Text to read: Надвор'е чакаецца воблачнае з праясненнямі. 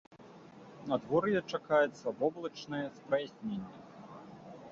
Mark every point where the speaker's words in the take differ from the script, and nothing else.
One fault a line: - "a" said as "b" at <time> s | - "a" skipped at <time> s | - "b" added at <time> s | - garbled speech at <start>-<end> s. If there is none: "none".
none